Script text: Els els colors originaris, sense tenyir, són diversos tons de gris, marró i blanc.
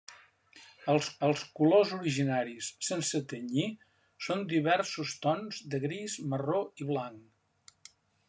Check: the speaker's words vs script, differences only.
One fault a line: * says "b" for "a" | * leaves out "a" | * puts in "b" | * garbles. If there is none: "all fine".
all fine